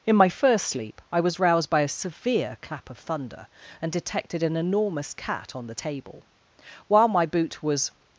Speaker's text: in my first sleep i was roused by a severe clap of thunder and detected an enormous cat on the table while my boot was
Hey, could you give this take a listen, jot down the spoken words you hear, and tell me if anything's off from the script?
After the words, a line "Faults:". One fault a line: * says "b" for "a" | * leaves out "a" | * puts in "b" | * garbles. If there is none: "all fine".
in my first sleep i was roused by a severe clap of thunder and detected an enormous cat on the table while my boot was
Faults:
all fine